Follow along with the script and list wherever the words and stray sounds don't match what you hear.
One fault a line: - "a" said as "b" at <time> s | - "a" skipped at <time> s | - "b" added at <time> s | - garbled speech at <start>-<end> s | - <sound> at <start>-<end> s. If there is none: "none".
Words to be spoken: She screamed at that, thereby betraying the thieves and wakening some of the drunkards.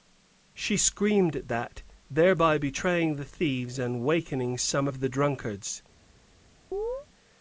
- chirp at 6.7-7.1 s